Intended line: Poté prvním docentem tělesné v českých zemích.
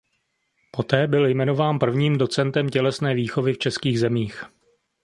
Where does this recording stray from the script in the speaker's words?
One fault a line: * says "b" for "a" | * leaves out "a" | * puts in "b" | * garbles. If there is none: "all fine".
* puts in "byl jmenován"
* puts in "výchovy"